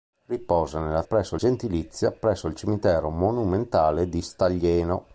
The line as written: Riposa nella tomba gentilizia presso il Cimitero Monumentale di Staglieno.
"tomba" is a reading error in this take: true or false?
true